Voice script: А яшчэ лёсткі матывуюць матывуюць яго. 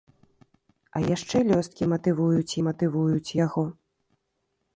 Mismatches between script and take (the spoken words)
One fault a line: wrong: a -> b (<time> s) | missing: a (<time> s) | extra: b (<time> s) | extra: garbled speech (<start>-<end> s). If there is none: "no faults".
no faults